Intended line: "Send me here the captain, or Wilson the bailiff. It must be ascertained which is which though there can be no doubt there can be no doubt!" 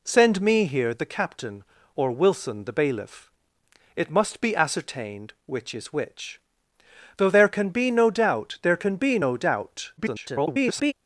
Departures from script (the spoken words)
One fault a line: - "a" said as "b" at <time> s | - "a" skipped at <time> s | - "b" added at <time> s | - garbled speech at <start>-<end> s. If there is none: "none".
- garbled speech at 10.0-10.9 s